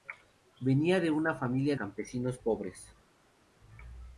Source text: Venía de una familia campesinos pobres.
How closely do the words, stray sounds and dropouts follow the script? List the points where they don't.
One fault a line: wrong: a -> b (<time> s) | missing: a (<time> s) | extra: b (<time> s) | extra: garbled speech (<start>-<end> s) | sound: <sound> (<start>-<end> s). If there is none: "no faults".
no faults